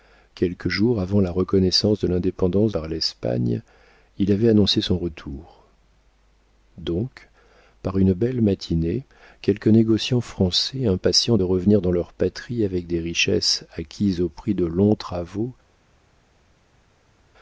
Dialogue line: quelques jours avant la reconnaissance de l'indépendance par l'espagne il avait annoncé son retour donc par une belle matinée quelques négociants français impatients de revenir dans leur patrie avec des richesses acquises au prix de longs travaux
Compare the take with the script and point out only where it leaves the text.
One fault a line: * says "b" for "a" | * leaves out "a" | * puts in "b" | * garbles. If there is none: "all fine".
all fine